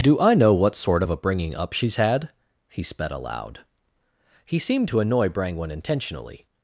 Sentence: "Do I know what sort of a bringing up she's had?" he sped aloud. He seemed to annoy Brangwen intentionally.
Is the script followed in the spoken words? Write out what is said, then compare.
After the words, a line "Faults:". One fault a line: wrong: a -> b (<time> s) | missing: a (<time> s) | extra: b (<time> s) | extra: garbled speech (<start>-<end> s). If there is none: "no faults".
"Do I know what sort of a bringing up she's had?" he sped aloud. He seemed to annoy Brangwen intentionally.
Faults:
no faults